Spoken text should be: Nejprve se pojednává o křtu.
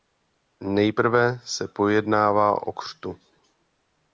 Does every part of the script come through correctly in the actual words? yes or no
yes